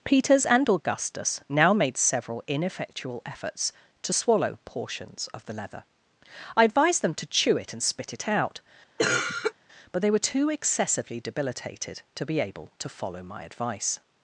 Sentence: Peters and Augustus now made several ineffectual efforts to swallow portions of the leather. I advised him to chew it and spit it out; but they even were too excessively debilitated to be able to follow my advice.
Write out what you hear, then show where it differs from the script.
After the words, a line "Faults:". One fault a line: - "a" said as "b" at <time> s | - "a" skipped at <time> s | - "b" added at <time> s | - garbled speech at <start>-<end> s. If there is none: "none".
Peters and Augustus now made several ineffectual efforts to swallow portions of the leather. I advised them to chew it and spit it out; but they were too excessively debilitated to be able to follow my advice.
Faults:
- "him" said as "them" at 7.0 s
- "even" skipped at 10.1 s